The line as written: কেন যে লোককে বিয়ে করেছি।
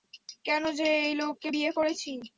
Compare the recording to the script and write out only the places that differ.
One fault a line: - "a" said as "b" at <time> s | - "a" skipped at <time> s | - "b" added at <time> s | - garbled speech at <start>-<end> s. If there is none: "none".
- "এই" added at 1.0 s